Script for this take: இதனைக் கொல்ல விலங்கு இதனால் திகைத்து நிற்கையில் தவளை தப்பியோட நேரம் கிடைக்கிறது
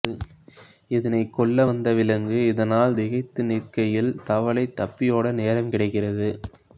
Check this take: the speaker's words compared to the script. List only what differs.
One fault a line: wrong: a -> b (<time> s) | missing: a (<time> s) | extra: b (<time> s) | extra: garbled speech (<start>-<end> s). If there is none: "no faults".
extra: வந்த (1.6 s)